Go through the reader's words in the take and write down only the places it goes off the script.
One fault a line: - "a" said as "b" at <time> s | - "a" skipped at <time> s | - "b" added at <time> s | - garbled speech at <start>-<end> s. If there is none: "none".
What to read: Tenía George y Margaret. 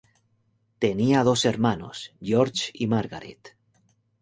- "dos hermanos" added at 1.2 s